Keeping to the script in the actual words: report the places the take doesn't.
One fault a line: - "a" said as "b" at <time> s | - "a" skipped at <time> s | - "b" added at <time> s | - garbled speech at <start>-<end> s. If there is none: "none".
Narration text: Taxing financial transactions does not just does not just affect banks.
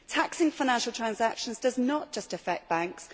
- "does not just" skipped at 2.3 s